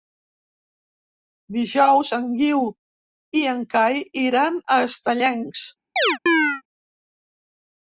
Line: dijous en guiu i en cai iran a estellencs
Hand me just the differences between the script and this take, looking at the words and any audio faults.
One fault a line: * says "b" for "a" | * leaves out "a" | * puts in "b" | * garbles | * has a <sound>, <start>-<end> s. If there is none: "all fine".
* has a chirp, 6.0-6.6 s